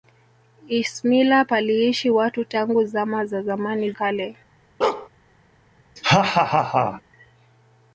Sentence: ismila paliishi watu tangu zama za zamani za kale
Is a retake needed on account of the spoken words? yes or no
yes